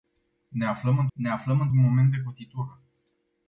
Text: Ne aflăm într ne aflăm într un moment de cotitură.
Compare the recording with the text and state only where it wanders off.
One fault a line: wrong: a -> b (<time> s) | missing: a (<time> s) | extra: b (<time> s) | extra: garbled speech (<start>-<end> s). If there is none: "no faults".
no faults